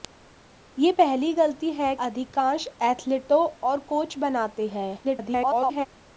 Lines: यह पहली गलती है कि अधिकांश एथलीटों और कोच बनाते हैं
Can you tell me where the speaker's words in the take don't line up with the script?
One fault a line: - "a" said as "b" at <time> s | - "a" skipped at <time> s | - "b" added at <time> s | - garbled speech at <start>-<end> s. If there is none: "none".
- "कि" skipped at 1.9 s
- garbled speech at 5.0-5.9 s